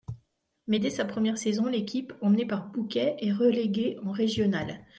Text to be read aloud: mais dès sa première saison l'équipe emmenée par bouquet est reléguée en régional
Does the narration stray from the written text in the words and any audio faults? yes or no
no